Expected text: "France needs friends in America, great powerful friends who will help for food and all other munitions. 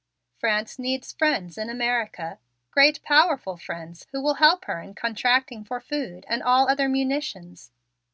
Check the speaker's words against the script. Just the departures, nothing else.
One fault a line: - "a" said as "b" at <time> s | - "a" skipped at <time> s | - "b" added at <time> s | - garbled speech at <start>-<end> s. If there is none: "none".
- "her in contracting" added at 4.7 s